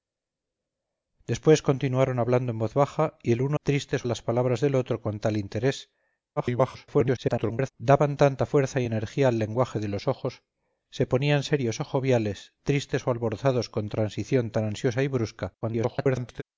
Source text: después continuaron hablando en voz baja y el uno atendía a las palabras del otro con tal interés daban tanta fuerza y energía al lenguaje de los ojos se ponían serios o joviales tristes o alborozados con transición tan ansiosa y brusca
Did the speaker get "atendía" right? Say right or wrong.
wrong